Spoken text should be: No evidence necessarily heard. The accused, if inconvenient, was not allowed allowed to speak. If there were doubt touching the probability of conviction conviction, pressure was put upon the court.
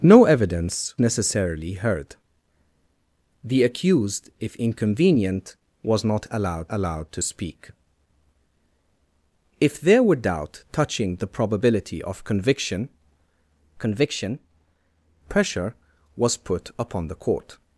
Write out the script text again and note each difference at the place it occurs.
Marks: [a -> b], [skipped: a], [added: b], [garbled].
No evidence necessarily heard. The accused, if inconvenient, was not allowed allowed to speak. If there were doubt touching the probability of conviction conviction, pressure was put upon the court.